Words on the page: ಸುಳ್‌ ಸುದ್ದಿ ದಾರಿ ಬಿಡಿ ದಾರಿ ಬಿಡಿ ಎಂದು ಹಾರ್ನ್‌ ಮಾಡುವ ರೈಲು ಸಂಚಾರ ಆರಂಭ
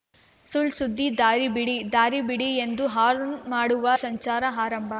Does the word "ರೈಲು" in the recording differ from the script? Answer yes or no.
yes